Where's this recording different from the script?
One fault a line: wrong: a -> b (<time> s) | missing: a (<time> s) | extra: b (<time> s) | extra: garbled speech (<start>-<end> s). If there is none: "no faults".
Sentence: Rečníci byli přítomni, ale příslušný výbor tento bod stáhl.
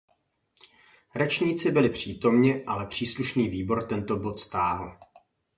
no faults